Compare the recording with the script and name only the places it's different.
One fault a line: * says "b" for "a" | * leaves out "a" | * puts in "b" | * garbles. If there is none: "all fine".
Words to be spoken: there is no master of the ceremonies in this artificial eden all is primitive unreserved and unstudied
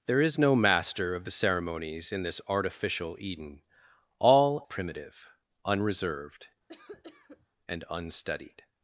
* leaves out "is"